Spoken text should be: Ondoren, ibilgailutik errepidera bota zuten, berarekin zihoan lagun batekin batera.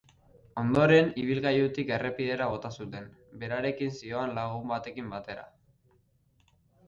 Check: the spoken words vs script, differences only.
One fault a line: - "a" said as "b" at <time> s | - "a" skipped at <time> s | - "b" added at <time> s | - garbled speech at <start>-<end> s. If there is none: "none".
none